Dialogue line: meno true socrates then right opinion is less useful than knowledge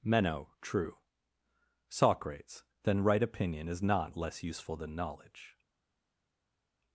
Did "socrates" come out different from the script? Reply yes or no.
no